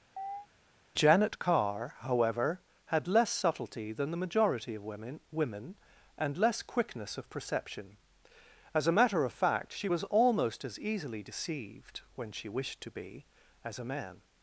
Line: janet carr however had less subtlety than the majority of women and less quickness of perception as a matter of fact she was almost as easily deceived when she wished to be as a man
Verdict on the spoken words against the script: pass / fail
fail